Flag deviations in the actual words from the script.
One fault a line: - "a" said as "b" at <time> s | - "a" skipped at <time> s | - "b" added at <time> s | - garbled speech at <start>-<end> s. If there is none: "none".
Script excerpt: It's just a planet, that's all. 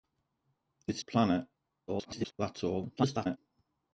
- "just" skipped at 1.0 s
- garbled speech at 1.9-2.3 s
- garbled speech at 3.0-3.4 s